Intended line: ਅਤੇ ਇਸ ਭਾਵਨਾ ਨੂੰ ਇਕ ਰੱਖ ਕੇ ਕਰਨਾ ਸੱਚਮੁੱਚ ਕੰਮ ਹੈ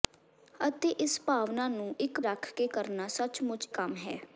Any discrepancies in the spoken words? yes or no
no